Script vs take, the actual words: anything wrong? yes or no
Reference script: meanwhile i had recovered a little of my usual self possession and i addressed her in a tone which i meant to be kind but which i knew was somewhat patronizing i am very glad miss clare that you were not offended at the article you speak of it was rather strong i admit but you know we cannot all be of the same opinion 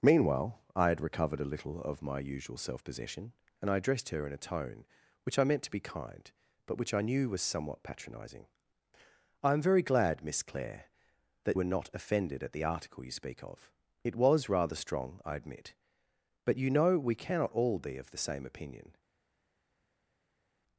yes